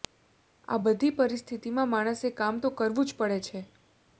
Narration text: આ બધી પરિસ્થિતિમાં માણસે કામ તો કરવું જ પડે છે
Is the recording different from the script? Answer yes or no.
no